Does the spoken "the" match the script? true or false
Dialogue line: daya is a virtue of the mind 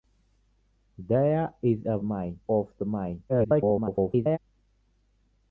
true